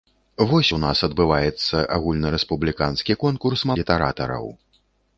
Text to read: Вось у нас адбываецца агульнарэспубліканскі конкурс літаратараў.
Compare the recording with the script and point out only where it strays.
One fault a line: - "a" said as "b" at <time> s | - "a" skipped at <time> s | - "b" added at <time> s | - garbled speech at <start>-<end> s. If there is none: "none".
none